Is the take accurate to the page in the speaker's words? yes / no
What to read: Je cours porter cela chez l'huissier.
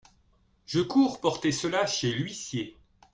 yes